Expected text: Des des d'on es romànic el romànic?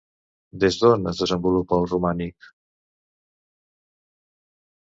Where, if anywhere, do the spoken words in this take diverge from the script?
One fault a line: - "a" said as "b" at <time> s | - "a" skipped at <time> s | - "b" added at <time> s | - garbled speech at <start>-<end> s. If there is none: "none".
- "des" skipped at 0.8 s
- "romànic" said as "desenvolupa" at 1.2 s